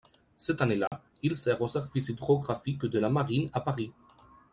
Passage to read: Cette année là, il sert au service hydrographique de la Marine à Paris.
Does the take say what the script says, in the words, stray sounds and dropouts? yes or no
no